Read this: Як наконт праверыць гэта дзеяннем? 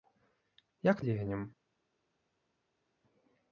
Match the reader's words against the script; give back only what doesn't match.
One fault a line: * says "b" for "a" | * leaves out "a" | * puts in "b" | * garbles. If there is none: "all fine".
* leaves out "наконт праверыць гэта"